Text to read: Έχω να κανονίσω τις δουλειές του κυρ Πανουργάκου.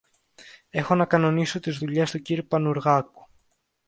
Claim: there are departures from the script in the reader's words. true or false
false